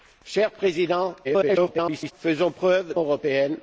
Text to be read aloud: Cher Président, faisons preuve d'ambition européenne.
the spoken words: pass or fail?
fail